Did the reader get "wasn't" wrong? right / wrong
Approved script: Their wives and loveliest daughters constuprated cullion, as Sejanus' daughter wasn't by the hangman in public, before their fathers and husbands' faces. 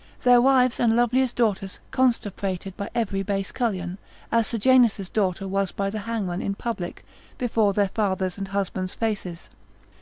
wrong